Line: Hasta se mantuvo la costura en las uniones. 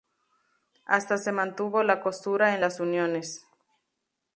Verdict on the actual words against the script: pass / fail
pass